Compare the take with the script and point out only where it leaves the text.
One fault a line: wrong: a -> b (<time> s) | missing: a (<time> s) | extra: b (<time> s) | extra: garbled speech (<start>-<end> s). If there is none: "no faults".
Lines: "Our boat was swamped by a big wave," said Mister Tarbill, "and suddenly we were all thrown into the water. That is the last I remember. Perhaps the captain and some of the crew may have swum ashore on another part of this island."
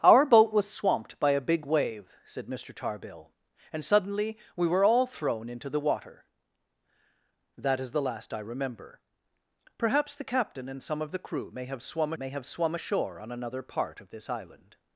extra: may have swum (12.2 s)